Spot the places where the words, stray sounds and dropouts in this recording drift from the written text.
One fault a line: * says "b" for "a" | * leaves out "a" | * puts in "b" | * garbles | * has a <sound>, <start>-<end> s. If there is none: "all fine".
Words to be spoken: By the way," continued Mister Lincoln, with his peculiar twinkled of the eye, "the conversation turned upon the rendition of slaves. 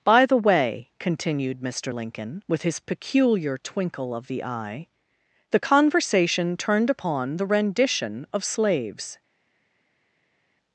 * says "twinkle" for "twinkled"